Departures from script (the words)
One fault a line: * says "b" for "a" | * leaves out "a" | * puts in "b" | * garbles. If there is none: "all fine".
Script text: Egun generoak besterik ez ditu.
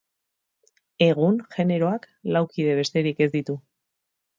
* puts in "lau kide"